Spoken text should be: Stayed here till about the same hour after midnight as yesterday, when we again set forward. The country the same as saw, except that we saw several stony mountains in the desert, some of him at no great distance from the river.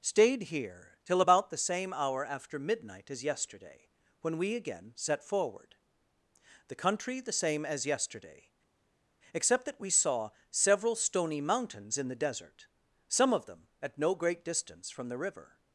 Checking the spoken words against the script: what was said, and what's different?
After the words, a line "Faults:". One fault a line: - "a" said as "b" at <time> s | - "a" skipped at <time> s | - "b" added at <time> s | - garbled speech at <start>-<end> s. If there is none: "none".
Stayed here till about the same hour after midnight as yesterday, when we again set forward. The country the same as yesterday, except that we saw several stony mountains in the desert, some of them at no great distance from the river.
Faults:
- "saw" said as "yesterday" at 7.8 s
- "him" said as "them" at 13.4 s